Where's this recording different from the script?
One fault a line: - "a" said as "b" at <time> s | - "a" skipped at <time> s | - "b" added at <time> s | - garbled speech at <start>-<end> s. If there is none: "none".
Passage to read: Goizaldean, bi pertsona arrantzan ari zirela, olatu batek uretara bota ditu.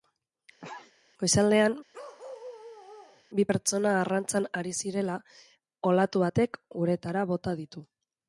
none